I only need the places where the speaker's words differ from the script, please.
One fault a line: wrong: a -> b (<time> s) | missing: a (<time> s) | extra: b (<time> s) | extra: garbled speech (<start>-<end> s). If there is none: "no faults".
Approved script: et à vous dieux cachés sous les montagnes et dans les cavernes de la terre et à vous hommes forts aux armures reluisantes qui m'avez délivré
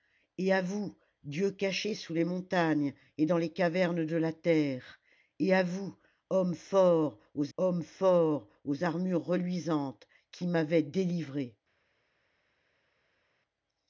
extra: hommes forts aux (7.6 s)